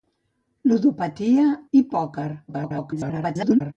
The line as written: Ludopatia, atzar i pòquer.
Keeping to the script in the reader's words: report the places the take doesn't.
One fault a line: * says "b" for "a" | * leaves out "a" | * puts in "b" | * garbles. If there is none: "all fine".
* leaves out "atzar"
* garbles